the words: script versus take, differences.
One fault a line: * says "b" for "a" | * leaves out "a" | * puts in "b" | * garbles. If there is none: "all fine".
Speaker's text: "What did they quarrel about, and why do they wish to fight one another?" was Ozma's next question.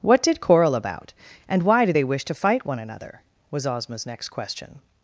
* leaves out "they"